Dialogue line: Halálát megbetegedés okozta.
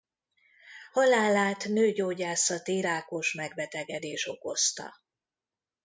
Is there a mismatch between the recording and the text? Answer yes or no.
yes